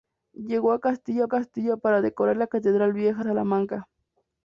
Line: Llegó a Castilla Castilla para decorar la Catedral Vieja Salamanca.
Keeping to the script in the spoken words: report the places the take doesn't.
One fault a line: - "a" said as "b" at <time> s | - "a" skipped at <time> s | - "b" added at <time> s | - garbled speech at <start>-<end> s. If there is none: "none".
none